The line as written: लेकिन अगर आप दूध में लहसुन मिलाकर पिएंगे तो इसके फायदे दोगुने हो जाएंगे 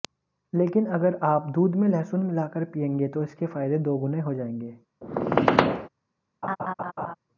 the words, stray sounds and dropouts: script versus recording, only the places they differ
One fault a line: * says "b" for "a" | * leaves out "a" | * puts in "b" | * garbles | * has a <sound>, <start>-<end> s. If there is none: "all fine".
* has a squeak, 5.0-5.9 s
* has a laugh, 6.4-7.1 s